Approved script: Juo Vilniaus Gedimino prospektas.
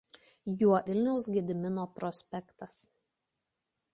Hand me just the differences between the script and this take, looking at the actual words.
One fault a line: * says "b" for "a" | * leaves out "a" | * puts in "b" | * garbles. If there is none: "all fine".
all fine